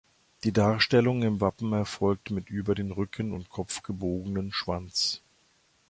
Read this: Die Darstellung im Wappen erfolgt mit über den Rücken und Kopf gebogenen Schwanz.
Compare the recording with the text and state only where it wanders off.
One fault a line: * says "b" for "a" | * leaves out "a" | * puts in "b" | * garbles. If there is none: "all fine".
all fine